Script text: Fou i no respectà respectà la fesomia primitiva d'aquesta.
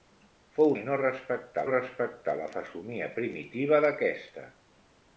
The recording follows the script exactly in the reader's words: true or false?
true